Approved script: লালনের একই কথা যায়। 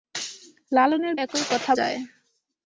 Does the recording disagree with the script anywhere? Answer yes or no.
no